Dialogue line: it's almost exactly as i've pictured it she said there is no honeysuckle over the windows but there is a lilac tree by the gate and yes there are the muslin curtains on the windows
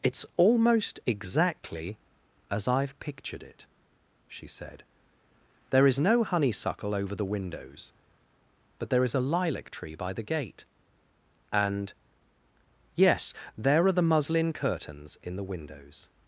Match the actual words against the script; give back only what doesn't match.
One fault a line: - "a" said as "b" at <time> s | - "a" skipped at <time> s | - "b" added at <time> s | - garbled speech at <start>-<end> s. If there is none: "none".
- "on" said as "in" at 15.2 s